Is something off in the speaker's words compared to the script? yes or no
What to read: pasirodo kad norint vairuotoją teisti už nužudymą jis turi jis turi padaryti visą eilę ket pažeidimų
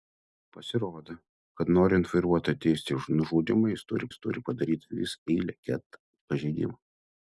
no